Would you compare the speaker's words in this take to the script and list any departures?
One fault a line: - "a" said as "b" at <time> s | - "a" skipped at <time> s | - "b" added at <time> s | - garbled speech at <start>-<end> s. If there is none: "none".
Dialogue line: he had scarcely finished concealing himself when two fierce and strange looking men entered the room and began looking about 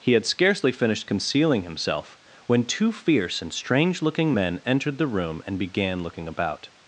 none